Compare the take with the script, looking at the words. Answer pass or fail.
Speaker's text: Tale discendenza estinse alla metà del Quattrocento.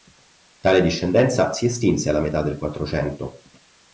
fail